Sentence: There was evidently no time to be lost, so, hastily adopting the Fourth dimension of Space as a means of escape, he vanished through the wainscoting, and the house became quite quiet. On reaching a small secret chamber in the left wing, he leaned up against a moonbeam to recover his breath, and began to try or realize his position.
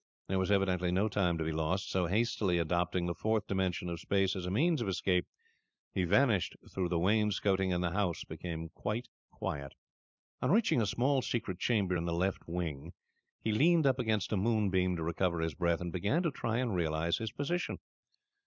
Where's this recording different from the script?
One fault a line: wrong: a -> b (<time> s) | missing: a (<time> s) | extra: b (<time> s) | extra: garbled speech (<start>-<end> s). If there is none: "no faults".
wrong: or -> and (16.6 s)